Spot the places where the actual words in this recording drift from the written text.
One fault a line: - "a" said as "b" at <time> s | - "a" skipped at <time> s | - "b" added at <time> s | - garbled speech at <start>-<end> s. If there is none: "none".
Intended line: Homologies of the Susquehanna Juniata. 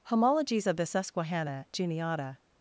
none